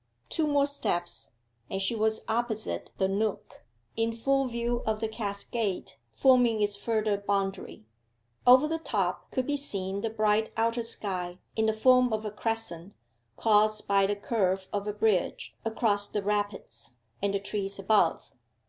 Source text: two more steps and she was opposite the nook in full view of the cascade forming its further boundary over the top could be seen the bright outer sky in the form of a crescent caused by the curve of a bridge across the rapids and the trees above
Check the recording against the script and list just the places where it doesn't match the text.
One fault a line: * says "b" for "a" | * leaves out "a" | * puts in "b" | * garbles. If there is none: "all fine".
all fine